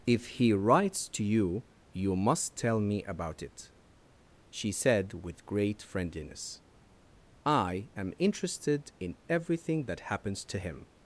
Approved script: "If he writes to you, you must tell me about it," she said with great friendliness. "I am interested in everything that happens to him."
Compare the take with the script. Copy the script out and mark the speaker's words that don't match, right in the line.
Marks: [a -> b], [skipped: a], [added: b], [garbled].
"If he writes to you, you must tell me about it," she said with great friendliness. "I am interested in everything that happens to him."